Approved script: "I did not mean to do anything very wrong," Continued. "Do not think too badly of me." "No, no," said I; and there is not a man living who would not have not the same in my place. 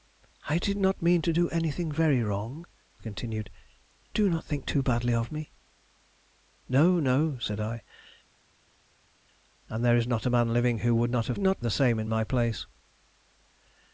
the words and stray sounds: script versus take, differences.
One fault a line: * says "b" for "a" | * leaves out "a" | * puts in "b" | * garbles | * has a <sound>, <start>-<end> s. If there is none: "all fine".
all fine